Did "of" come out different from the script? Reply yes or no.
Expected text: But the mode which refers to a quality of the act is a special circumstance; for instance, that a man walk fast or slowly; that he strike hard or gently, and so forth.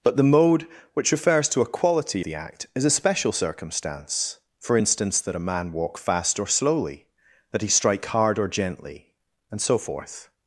yes